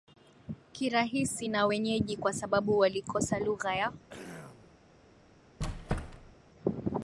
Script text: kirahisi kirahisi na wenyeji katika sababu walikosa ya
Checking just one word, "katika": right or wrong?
wrong